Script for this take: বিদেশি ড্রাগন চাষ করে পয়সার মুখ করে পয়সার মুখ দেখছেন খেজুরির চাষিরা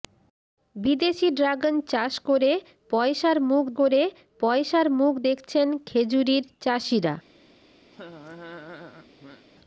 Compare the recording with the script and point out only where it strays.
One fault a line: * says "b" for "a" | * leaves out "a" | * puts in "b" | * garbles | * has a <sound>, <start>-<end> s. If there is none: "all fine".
* has a laugh, 7.9-9.5 s